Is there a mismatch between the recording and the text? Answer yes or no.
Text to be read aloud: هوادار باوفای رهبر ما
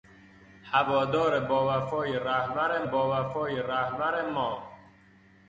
yes